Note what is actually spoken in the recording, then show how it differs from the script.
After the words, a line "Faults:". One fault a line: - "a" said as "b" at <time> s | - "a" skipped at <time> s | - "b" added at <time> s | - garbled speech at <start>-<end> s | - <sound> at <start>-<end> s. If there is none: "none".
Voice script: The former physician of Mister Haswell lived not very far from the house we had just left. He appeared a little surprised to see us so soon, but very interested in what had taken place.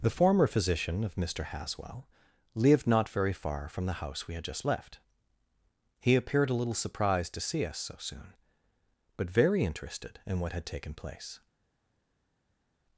The former physician of Mister Haswell lived not very far from the house we had just left. He appeared a little surprised to see us so soon, but very interested in what had taken place.
Faults:
none